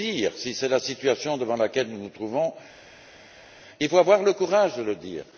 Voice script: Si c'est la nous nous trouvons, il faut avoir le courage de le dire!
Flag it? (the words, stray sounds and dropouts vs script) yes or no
yes